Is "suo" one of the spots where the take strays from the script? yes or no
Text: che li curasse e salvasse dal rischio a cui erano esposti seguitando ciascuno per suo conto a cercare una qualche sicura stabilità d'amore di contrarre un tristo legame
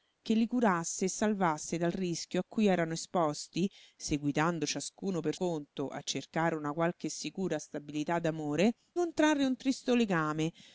yes